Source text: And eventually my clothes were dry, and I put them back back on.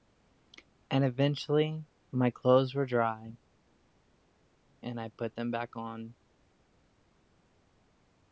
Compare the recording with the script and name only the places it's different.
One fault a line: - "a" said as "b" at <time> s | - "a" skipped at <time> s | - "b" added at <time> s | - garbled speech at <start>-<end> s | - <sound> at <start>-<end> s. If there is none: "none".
- "back" skipped at 5.8 s